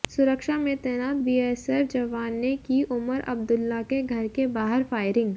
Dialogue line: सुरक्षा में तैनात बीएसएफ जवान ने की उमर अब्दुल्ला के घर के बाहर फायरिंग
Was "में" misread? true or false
false